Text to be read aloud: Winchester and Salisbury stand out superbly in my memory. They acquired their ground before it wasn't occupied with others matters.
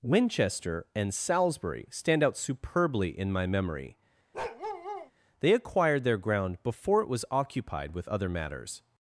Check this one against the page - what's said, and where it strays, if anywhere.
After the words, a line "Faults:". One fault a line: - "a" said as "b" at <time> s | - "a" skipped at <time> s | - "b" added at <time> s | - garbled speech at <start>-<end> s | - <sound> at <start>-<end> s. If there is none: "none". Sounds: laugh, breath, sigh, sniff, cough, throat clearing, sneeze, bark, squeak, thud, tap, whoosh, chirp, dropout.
Winchester and Salisbury stand out superbly in my memory. They acquired their ground before it was occupied with other matters.
Faults:
- bark at 4.3-5.1 s
- "wasn't" said as "was" at 7.1 s
- "others" said as "other" at 8.1 s